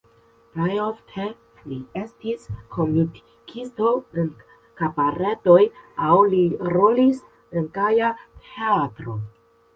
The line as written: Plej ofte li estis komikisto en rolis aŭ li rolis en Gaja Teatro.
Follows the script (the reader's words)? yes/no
no